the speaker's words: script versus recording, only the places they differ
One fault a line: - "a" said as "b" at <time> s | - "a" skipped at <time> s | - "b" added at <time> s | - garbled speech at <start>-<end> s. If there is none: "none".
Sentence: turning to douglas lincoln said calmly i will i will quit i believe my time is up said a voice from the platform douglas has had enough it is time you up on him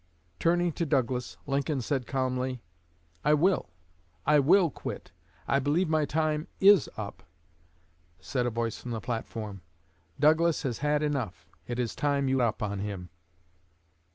none